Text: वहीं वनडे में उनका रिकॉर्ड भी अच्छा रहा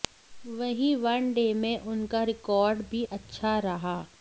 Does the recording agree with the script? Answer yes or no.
yes